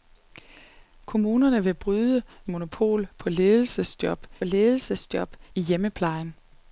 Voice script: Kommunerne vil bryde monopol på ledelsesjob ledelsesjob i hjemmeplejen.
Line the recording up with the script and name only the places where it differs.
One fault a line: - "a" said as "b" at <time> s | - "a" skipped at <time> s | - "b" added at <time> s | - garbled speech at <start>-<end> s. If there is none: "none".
none